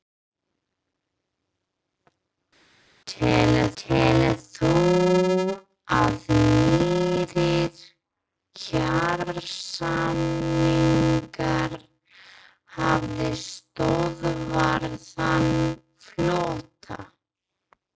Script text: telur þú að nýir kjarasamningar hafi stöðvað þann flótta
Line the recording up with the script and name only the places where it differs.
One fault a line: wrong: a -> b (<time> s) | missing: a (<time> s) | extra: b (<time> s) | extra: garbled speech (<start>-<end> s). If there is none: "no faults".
extra: telur (3.8 s)